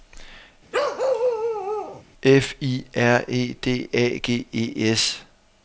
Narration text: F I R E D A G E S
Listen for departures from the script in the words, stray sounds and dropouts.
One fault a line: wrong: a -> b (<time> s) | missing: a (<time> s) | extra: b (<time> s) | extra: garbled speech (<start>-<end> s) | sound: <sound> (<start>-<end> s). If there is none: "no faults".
sound: bark (0.7-2.0 s)